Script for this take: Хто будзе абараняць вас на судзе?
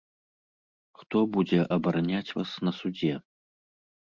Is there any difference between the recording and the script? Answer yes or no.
no